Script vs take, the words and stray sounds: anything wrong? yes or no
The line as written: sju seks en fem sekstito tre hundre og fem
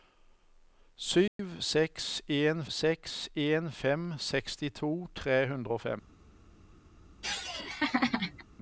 yes